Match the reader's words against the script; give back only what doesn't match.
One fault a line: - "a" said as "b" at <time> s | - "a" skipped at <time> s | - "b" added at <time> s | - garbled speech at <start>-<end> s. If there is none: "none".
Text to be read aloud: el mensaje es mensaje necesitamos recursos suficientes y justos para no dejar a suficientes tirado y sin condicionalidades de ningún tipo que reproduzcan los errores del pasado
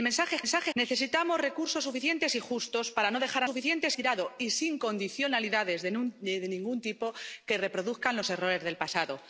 none